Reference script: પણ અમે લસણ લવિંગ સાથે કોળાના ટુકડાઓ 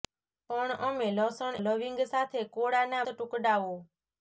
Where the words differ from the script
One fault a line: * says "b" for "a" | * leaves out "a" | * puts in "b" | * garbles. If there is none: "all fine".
all fine